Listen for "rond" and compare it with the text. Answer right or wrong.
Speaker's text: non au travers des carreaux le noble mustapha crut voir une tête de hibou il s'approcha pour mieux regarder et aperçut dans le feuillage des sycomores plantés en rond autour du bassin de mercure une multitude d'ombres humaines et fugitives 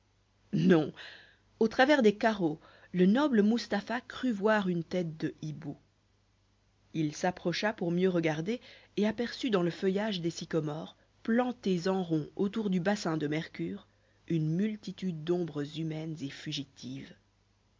right